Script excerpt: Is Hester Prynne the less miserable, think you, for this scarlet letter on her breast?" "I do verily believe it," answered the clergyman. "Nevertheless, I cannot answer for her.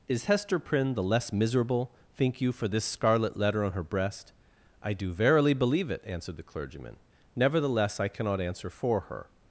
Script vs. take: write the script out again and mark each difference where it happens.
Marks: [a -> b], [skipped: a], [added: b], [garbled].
Is Hester Prynne the less miserable, think you, for this scarlet letter on her breast?" "I do verily believe it," answered the clergyman. "Nevertheless, I cannot answer for her.